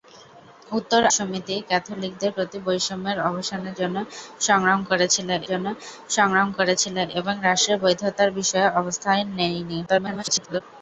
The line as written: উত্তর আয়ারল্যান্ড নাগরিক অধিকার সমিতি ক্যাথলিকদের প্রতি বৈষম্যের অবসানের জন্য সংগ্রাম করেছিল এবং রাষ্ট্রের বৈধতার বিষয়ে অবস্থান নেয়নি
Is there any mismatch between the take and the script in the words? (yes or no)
yes